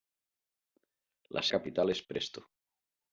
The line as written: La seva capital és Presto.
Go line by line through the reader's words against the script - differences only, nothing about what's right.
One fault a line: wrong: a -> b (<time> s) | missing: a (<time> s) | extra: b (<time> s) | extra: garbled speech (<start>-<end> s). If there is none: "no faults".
missing: seva (1.4 s)